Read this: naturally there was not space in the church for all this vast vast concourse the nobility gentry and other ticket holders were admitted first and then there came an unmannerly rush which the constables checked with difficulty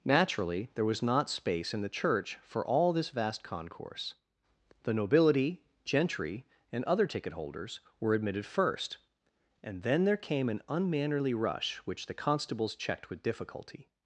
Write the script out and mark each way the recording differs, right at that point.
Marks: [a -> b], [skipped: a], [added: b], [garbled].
naturally there was not space in the church for all this vast [skipped: vast] concourse the nobility gentry and other ticket holders were admitted first and then there came an unmannerly rush which the constables checked with difficulty